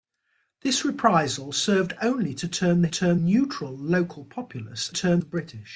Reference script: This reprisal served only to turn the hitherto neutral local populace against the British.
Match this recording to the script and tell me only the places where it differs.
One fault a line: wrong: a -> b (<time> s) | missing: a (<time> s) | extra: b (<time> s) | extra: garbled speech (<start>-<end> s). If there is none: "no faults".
wrong: hitherto -> turn (2.9 s)
wrong: against -> turn (4.9 s)